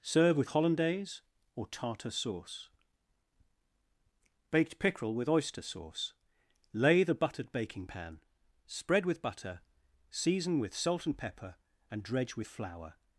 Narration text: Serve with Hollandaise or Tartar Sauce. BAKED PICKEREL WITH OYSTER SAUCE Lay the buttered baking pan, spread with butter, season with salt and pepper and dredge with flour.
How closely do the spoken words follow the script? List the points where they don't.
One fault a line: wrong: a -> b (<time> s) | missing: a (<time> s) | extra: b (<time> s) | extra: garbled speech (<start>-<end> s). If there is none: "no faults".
no faults